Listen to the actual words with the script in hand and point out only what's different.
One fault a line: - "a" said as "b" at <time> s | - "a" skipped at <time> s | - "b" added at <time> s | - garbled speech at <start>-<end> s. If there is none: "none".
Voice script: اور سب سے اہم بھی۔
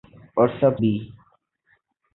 - "سے اہم" skipped at 0.8 s